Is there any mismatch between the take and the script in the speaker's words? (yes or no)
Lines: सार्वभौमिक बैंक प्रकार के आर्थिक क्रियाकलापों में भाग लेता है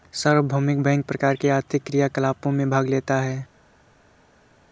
no